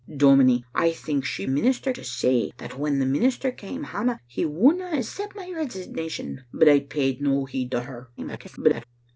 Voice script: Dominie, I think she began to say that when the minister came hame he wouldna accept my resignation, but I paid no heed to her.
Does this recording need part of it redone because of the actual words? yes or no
yes